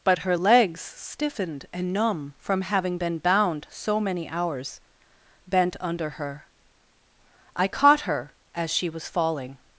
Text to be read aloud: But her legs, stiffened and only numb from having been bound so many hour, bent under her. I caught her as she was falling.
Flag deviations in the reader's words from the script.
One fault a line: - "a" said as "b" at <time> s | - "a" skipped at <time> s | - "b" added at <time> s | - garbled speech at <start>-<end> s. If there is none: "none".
- "only" skipped at 1.9 s
- "hour" said as "hours" at 4.3 s